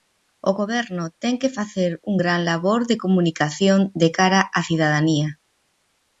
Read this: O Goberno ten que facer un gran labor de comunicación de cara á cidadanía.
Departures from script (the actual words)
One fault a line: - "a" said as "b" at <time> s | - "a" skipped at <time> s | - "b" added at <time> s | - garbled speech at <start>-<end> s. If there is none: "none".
none